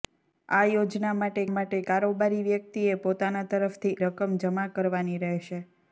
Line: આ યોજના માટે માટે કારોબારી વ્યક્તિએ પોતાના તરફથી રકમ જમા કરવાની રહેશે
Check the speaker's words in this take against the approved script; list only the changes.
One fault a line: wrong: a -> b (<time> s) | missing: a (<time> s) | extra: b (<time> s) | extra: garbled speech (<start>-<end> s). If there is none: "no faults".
no faults